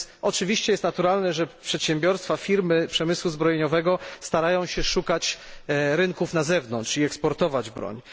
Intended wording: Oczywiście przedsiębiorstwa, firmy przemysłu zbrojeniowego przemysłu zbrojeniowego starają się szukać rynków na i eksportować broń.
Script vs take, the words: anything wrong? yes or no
yes